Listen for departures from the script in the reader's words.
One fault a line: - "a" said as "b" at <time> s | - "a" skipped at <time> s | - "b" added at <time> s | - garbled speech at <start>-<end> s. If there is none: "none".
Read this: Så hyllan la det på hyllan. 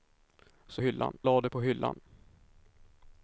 none